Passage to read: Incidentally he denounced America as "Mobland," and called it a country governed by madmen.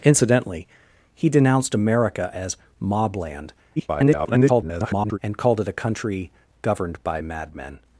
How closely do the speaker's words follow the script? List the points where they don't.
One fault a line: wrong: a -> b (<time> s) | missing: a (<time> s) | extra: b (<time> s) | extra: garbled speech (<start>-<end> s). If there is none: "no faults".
extra: garbled speech (3.8-5.2 s)